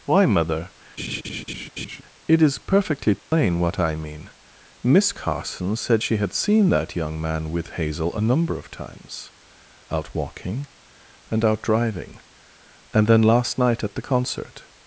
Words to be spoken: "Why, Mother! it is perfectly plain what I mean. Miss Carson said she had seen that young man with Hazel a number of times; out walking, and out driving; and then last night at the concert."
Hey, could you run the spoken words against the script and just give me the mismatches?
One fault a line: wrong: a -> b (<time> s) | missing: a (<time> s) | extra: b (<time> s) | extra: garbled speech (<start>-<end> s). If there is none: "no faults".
no faults